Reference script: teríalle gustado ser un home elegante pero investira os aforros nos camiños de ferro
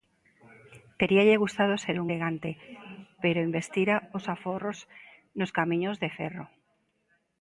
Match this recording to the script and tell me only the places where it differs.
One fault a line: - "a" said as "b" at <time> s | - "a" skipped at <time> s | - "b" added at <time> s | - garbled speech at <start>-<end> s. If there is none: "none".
- "home" skipped at 2.1 s